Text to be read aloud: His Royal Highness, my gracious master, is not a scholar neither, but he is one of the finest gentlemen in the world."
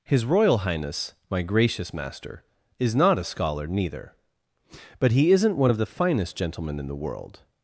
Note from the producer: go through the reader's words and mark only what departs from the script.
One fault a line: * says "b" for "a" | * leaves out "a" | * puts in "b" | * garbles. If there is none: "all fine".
* says "isn't" for "is"